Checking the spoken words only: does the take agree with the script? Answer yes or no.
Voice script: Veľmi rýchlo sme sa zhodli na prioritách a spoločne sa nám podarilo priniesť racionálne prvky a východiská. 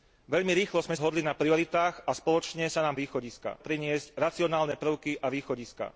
no